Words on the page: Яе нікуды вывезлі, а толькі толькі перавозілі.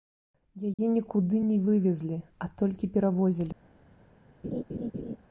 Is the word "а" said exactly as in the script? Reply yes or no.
yes